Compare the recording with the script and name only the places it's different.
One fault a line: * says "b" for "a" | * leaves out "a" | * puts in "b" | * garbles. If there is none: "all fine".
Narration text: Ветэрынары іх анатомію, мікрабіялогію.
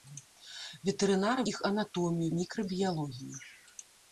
all fine